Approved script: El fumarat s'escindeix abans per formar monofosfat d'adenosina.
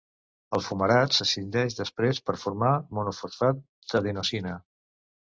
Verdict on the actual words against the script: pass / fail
fail